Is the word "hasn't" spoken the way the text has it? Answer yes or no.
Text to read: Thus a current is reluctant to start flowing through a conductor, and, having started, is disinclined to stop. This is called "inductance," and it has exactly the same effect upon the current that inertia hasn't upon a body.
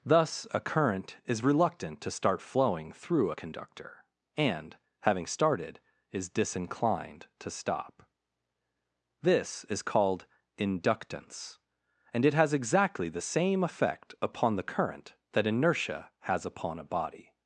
no